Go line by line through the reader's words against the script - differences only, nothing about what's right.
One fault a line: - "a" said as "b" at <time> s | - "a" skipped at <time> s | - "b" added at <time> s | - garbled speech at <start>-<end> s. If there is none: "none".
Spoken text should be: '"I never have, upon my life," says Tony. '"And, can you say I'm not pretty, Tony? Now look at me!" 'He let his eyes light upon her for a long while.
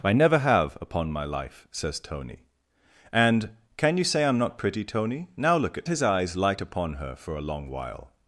- "me He let" skipped at 5.9 s